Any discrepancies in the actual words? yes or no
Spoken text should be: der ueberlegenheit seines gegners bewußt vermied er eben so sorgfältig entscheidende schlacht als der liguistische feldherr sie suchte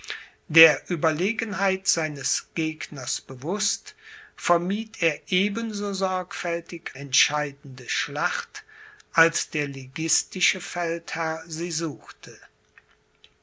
no